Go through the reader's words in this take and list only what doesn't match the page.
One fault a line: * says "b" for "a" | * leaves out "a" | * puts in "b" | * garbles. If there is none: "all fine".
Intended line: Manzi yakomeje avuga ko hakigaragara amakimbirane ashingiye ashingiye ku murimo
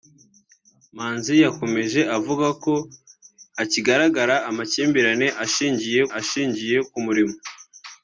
all fine